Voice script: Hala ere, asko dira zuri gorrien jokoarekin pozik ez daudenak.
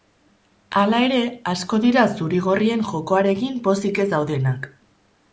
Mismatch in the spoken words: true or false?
false